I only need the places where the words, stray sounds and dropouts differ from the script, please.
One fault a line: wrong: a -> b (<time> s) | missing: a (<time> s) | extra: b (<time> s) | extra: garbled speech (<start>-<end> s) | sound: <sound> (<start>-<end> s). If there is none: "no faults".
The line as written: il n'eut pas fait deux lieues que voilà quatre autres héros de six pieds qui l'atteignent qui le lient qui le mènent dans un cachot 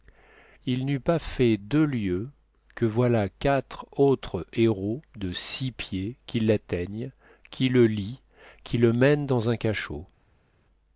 no faults